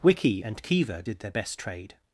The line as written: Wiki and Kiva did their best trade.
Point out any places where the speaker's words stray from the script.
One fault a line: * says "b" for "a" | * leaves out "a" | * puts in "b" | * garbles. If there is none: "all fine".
all fine